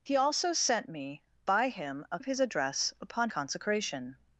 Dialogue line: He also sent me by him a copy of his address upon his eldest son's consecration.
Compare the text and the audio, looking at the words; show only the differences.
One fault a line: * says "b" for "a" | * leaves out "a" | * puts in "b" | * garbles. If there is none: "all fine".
* leaves out "copy"
* leaves out "his eldest son's"